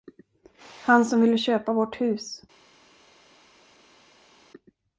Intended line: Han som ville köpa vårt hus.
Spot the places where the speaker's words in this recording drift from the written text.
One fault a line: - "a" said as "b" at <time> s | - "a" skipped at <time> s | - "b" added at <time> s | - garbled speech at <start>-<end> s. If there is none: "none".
none